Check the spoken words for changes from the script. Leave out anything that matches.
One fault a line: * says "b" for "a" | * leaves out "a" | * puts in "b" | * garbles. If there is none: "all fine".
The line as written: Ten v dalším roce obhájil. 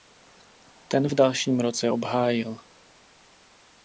all fine